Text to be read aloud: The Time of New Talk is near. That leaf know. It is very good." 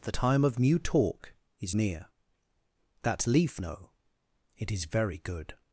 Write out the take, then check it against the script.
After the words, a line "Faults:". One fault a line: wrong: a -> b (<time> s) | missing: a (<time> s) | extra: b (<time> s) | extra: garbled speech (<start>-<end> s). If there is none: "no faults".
The Time of New Talk is near. That leaf know. It is very good."
Faults:
no faults